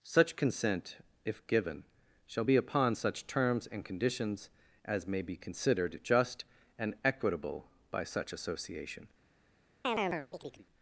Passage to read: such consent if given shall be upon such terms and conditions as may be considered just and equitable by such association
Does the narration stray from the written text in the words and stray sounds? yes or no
yes